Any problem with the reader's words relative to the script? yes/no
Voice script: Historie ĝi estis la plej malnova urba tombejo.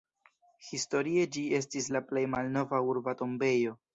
no